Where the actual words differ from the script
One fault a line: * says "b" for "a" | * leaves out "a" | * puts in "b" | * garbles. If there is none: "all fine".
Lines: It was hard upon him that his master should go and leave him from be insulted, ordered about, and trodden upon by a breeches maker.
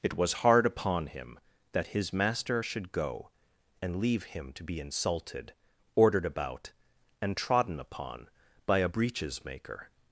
* says "to" for "from"